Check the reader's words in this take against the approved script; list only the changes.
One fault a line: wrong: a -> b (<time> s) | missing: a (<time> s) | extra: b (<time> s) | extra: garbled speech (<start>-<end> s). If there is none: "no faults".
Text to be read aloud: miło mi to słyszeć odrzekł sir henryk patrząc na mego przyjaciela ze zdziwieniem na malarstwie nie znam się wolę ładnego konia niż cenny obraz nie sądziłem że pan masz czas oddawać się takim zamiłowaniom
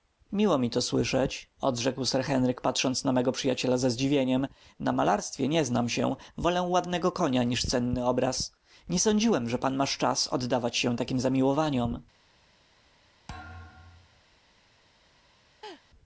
no faults